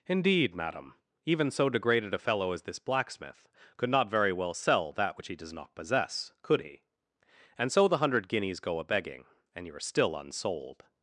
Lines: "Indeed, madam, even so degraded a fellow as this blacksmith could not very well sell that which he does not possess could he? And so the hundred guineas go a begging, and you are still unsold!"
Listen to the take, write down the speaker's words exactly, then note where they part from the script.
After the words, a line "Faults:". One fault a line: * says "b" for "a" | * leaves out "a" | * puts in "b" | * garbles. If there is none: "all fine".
"Indeed, madam, even so degraded a fellow as this blacksmith could not very well sell that which he does not possess could he? And so the hundred guineas go a begging, and you are still unsold!"
Faults:
all fine